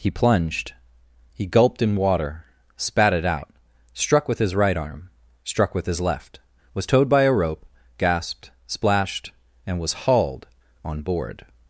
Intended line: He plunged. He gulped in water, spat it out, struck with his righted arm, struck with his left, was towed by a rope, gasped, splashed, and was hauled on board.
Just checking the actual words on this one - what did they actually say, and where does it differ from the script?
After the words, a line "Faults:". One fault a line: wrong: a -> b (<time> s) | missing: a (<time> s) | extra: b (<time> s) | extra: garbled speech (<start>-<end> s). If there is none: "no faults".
He plunged. He gulped in water, spat it out, struck with his right arm, struck with his left, was towed by a rope, gasped, splashed, and was hauled on board.
Faults:
wrong: righted -> right (4.5 s)